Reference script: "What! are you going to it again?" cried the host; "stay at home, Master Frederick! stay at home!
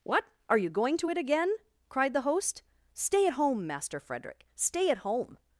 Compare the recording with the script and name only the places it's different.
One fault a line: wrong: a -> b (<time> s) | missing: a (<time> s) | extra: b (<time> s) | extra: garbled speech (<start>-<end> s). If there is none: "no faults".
no faults